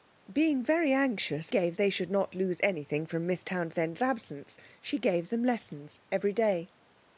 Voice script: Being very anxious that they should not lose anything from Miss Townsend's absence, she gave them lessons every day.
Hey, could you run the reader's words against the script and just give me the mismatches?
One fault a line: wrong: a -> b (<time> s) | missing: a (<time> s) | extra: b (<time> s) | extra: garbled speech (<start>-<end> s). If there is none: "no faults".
wrong: that -> gave (1.5 s)